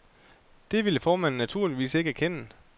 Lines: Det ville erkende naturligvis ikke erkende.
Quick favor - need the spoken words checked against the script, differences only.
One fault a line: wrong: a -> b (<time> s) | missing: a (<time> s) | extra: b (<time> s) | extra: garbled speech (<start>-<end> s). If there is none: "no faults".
wrong: erkende -> formanden (1.0 s)